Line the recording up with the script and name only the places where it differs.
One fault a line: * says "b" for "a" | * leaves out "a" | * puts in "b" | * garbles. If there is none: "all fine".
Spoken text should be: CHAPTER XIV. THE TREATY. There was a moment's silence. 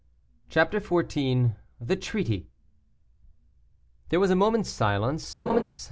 all fine